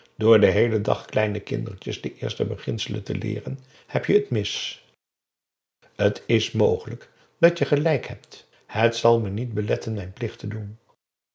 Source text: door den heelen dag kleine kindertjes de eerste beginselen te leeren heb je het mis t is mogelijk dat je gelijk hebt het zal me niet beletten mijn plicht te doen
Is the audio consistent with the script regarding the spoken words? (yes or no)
yes